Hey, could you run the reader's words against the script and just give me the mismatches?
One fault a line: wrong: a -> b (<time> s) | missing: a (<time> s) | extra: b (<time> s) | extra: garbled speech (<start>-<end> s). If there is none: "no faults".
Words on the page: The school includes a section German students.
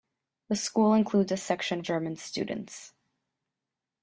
no faults